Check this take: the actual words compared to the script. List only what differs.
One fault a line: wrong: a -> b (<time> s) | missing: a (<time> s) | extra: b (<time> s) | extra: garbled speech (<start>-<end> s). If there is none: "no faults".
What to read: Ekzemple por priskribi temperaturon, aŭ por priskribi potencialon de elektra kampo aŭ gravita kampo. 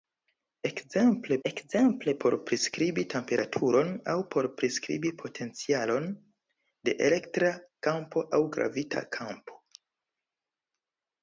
extra: ekzemple (1.5 s)